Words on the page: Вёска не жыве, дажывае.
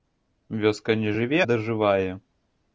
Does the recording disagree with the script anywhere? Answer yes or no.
no